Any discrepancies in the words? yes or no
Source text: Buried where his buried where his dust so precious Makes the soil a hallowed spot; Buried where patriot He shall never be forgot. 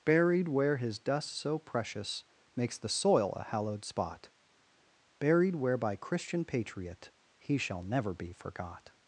yes